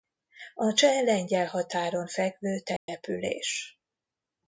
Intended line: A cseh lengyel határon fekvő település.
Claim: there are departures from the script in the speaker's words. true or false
false